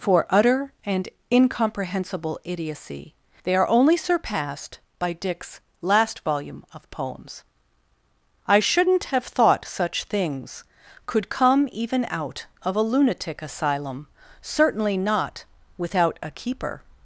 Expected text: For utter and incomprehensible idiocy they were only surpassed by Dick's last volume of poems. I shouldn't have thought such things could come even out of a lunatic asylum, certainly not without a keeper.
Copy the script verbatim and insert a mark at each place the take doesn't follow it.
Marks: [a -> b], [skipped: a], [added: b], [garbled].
For utter and incomprehensible idiocy they [were -> are] only surpassed by Dick's last volume of poems. I shouldn't have thought such things could come even out of a lunatic asylum, certainly not without a keeper.